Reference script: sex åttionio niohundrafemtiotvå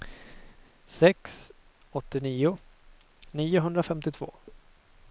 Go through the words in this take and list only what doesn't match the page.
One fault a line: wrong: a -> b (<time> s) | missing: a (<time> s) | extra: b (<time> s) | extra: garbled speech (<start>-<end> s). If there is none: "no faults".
no faults